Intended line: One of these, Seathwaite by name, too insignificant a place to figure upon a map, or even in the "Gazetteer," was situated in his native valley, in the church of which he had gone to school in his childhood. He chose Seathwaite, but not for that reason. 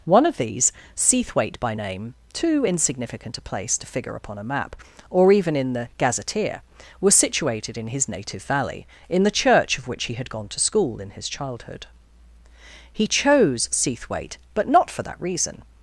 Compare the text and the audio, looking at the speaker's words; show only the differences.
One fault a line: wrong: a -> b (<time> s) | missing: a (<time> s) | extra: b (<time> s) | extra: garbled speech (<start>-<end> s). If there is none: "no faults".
no faults